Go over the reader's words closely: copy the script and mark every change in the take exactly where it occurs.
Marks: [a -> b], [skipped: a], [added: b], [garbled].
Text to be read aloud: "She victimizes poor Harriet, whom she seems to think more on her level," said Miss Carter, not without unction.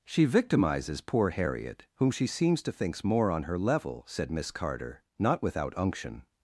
"She victimizes poor Harriet, whom she seems to [think -> thinks] more on her level," said Miss Carter, not without unction.